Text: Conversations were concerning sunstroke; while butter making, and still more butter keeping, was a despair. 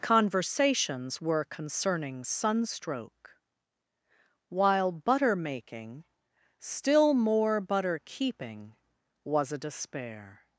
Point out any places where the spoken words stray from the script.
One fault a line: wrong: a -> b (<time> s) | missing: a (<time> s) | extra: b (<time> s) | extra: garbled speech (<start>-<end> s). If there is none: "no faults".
missing: and (6.1 s)